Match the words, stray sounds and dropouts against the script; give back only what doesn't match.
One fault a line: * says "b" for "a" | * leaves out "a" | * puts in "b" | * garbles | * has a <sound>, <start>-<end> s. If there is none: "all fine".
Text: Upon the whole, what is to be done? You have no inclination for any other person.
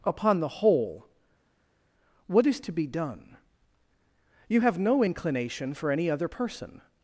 all fine